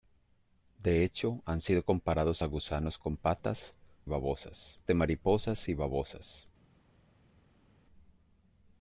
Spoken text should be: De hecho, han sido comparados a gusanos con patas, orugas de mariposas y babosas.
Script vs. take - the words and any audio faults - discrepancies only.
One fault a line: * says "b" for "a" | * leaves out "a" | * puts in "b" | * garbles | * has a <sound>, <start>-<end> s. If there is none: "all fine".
* says "babosas" for "orugas"